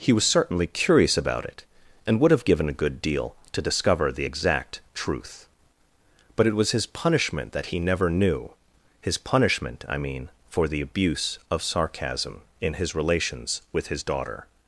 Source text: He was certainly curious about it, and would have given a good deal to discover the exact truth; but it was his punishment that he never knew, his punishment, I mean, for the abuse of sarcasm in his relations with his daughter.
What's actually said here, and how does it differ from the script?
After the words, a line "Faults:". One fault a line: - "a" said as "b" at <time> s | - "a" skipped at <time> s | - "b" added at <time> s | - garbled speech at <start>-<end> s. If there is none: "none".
He was certainly curious about it, and would have given a good deal to discover the exact truth; but it was his punishment that he never knew, his punishment, I mean, for the abuse of sarcasm in his relations with his daughter.
Faults:
none